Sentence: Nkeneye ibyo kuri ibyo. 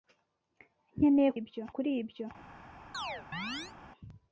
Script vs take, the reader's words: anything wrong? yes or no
no